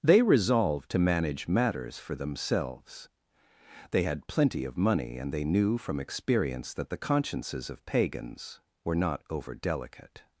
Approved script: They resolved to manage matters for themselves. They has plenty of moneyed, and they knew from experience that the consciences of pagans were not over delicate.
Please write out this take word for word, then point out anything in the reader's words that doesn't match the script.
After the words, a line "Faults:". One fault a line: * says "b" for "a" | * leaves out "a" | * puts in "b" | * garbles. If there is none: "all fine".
They resolved to manage matters for themselves. They had plenty of money, and they knew from experience that the consciences of pagans were not over delicate.
Faults:
* says "had" for "has"
* says "money" for "moneyed"